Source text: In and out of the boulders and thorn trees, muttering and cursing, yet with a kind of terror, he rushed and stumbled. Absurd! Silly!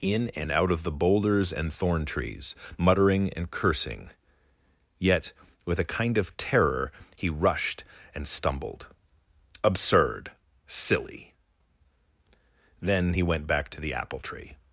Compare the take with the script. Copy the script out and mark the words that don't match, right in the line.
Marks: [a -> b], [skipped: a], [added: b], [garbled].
In and out of the boulders and thorn trees, muttering and cursing, yet with a kind of terror, he rushed and stumbled. Absurd! Silly! [added: Then he went back to the apple tree]